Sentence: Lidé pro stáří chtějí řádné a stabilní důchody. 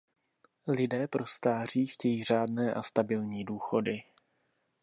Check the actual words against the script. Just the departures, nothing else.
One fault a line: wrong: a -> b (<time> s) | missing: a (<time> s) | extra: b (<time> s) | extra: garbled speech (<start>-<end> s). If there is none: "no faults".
no faults